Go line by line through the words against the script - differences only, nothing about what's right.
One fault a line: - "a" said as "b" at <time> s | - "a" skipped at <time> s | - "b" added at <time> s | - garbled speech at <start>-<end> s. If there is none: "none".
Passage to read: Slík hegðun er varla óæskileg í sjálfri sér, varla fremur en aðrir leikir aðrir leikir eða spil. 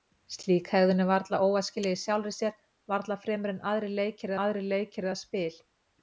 none